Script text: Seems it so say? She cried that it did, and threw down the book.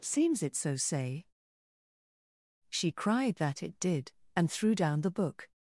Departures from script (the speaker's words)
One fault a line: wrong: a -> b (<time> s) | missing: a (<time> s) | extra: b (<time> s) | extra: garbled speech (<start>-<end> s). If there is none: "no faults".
no faults